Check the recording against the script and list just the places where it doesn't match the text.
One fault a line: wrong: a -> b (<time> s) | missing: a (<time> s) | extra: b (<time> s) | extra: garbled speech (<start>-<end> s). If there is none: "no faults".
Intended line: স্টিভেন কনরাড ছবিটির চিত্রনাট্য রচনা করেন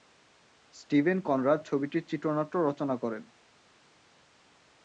no faults